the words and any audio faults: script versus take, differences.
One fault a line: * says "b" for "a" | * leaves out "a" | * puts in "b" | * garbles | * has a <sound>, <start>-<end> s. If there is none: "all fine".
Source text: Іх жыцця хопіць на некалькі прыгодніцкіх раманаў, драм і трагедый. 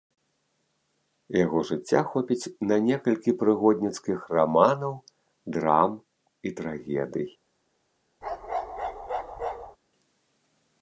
* says "Яго" for "Іх"
* has a bark, 8.2-9.8 s